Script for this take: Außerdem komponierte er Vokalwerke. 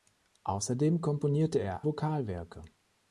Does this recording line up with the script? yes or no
yes